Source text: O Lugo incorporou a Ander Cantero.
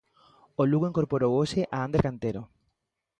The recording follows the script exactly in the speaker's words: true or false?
false